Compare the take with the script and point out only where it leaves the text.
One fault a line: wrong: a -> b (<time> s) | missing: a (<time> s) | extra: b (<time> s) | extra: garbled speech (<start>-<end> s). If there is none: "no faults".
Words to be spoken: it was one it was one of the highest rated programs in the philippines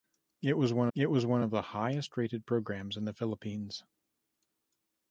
no faults